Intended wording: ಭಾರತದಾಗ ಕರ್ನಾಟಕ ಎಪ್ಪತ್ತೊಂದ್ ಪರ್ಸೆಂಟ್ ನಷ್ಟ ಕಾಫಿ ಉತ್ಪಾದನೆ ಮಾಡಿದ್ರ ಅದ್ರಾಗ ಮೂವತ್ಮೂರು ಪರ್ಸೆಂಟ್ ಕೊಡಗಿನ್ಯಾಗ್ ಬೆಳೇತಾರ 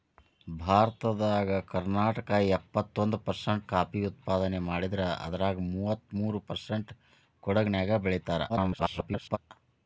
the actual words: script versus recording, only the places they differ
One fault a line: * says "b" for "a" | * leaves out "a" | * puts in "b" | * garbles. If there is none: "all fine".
* leaves out "ನಷ್ಟ"
* garbles